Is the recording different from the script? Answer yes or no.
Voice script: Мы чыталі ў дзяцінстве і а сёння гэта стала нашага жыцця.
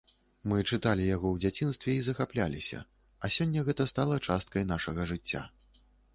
yes